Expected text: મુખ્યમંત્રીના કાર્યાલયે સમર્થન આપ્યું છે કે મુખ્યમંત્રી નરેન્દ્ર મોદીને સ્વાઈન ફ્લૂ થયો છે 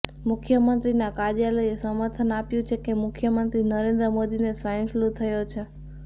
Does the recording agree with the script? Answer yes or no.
yes